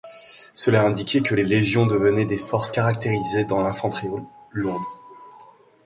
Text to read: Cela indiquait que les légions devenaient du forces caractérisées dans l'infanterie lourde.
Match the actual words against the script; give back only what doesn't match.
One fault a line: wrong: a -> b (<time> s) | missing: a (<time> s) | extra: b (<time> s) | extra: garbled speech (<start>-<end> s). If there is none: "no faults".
wrong: du -> des (2.2 s)